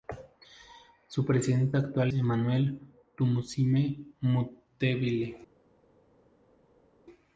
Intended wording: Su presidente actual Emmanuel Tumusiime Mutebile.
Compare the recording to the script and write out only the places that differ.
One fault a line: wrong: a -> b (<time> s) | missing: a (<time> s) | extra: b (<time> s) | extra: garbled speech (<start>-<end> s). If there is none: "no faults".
no faults